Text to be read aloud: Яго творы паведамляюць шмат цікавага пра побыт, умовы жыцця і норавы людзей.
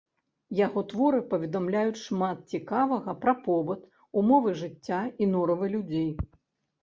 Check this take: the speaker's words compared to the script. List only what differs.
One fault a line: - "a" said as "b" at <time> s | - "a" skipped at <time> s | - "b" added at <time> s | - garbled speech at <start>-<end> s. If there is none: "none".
none